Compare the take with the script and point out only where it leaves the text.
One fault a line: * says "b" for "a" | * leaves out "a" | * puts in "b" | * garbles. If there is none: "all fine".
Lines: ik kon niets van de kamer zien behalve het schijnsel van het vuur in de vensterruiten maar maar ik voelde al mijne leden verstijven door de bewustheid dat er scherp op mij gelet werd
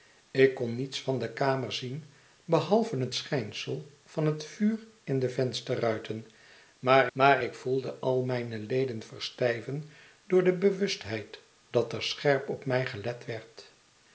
all fine